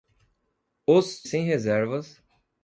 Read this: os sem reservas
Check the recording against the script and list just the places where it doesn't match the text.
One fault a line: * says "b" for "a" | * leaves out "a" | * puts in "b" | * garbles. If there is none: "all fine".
all fine